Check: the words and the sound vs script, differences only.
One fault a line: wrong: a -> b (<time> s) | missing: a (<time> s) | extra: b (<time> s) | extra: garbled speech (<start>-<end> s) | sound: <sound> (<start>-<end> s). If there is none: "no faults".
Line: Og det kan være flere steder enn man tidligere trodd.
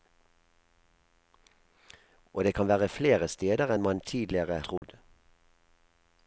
sound: dropout (4.8-4.8 s)